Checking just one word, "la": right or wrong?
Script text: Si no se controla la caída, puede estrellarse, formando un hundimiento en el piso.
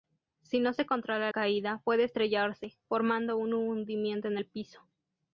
wrong